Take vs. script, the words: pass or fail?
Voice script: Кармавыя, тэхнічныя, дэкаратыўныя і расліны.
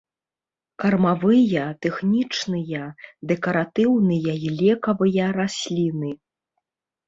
fail